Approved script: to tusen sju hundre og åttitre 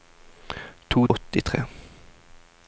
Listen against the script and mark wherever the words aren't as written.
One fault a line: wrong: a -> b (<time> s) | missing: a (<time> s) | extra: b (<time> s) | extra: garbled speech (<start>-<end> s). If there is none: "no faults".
missing: tusen sju hundre (1.0 s)